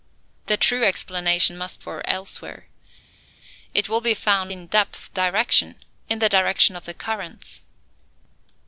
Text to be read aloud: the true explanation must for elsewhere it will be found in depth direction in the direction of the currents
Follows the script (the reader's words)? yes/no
yes